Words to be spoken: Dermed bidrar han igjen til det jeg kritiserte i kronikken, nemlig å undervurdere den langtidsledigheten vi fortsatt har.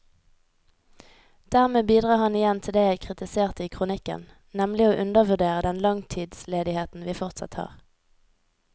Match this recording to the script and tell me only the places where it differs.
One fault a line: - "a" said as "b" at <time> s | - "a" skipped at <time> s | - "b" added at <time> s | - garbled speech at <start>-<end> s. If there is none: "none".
none